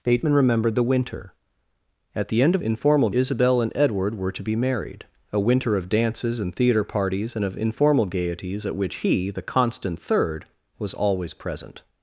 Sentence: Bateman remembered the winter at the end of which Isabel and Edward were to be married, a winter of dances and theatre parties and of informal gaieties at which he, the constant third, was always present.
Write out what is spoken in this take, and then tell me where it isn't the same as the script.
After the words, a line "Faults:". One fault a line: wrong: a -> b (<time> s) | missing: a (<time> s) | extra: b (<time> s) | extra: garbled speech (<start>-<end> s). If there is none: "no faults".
Bateman remembered the winter at the end of informal Isabel and Edward were to be married, a winter of dances and theatre parties and of informal gaieties at which he, the constant third, was always present.
Faults:
wrong: which -> informal (2.6 s)